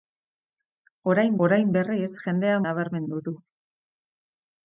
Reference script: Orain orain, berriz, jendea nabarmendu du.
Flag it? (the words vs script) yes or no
no